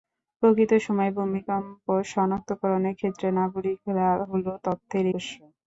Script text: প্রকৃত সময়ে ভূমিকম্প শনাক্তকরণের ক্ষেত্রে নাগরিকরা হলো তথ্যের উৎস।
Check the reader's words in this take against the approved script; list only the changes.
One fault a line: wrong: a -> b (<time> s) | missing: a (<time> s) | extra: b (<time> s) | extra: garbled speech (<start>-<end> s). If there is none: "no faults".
no faults